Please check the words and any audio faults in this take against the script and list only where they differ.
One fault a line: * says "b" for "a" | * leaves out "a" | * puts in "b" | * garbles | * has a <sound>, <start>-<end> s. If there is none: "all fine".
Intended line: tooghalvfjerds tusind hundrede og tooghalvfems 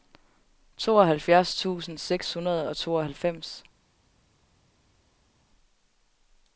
* puts in "seks"